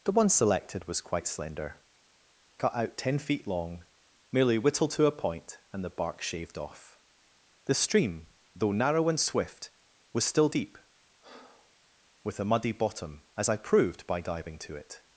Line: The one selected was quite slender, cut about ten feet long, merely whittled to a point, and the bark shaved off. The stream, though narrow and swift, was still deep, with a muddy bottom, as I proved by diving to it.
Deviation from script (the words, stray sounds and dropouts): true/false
true